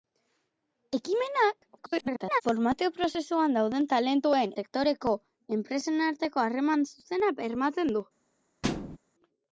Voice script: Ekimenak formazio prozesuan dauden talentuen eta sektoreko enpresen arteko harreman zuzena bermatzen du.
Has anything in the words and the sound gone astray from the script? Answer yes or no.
yes